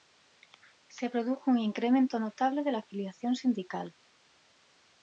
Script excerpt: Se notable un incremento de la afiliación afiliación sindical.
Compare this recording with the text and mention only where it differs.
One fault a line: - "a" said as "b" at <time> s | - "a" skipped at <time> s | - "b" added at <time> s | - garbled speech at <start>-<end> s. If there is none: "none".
- "notable" said as "produjo" at 1.1 s
- "notable" added at 2.2 s
- "afiliación" skipped at 3.3 s